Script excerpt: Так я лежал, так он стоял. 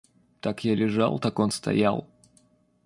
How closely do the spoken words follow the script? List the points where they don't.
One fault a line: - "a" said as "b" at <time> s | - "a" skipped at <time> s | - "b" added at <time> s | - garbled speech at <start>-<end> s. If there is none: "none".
none